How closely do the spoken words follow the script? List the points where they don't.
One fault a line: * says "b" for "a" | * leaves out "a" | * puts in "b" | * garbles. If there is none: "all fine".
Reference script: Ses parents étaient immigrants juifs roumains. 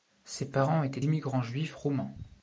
all fine